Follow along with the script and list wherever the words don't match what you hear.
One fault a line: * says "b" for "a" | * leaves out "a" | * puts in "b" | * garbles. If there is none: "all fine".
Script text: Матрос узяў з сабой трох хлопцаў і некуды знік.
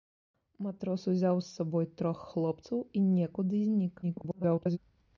* garbles